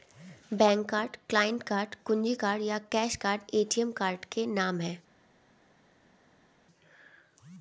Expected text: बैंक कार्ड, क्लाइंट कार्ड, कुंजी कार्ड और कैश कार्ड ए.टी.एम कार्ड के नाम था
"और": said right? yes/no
no